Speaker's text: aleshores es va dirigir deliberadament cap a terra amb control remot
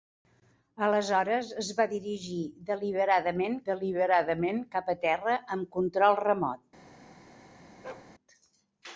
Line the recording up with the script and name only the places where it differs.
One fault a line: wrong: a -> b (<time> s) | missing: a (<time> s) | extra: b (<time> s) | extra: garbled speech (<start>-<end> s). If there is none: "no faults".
extra: deliberadament (3.7 s)